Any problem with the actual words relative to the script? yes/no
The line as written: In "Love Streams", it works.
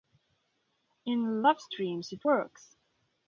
no